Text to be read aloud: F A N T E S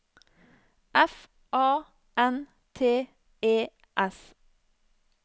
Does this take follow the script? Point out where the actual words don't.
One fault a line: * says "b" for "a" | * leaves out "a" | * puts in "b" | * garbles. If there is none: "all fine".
all fine